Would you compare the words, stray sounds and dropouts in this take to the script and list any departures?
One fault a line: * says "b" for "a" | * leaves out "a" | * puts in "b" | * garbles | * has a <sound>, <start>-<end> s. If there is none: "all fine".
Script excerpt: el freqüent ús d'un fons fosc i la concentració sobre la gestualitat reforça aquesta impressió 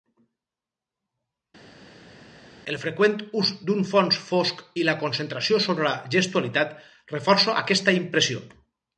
all fine